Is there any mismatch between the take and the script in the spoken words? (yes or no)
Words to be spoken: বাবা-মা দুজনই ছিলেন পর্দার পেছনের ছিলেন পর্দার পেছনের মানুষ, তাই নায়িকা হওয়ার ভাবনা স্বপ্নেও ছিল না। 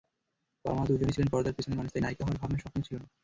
yes